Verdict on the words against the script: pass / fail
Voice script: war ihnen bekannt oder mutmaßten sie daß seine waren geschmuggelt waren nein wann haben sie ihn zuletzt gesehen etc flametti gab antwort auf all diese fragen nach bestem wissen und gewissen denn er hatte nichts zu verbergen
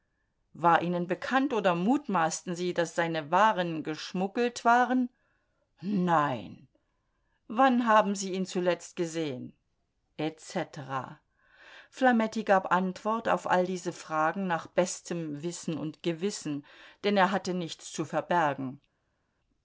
pass